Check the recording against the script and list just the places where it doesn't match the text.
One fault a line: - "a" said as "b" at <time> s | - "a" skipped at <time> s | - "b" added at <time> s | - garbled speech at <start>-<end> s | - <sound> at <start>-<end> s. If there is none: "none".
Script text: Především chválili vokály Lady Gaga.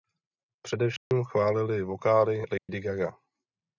- dropout at 1.0-1.1 s
- dropout at 2.6-2.7 s